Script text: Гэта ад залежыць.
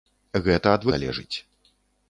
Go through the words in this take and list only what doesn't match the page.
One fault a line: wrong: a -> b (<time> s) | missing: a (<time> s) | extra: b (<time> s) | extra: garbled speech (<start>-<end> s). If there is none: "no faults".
no faults